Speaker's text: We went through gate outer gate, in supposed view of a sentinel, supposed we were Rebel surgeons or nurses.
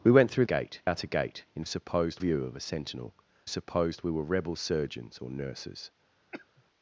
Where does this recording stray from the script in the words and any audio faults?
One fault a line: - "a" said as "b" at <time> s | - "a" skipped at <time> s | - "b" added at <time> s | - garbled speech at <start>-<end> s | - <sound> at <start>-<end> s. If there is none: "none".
- cough at 6.3-6.6 s